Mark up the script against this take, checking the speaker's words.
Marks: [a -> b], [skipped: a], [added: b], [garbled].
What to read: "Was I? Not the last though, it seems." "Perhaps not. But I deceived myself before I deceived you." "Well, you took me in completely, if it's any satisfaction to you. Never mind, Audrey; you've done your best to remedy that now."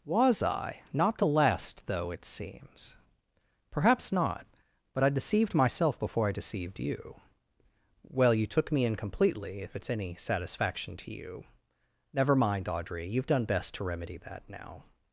"Was I? Not the last though, it seems." "Perhaps not. But I deceived myself before I deceived you." "Well, you took me in completely, if it's any satisfaction to you. Never mind, Audrey; you've done [skipped: your] best to remedy that now."